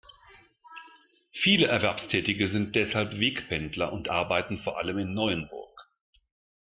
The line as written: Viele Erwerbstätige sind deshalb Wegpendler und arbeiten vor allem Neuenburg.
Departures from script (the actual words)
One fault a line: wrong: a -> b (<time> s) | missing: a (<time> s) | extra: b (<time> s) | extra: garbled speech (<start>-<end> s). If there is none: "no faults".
extra: in (5.0 s)